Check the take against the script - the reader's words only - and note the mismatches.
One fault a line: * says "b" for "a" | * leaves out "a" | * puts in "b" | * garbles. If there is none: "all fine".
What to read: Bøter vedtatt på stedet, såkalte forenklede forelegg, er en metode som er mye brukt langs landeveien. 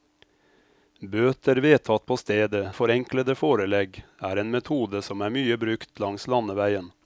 * leaves out "såkalte"